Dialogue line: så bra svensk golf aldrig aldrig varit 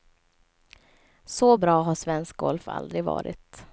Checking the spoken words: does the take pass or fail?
fail